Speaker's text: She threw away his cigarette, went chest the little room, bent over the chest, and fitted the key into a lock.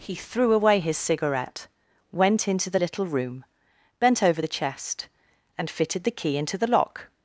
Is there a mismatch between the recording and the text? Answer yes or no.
yes